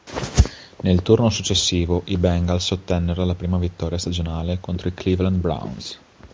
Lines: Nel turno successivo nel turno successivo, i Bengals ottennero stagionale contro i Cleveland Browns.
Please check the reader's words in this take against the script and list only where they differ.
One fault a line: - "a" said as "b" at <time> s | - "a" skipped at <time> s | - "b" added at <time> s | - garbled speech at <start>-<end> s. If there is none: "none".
- "nel turno successivo i Bengals ottennero" said as "i Bengals ottennero la prima vittoria" at 2.0 s